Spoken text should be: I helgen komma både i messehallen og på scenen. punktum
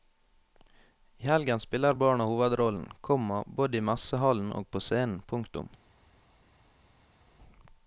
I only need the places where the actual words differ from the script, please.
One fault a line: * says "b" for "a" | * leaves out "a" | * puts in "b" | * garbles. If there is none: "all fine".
* puts in "spiller barna hovedrollen"